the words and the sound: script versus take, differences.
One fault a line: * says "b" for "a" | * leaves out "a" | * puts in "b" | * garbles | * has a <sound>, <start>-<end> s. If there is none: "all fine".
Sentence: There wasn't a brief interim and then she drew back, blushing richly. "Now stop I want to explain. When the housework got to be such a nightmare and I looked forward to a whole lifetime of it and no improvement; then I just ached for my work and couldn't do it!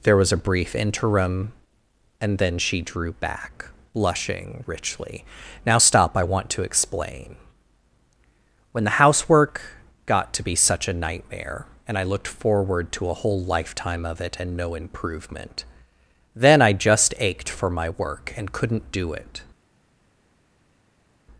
* says "was" for "wasn't"